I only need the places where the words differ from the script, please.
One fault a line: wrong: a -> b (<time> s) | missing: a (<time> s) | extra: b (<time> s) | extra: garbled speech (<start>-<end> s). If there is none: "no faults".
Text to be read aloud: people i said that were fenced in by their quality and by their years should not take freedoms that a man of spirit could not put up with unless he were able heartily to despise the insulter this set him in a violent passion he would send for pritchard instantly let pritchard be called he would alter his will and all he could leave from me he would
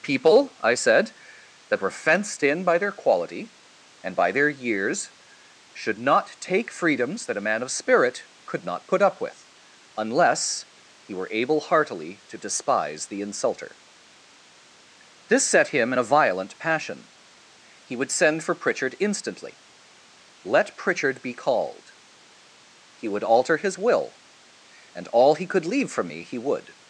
no faults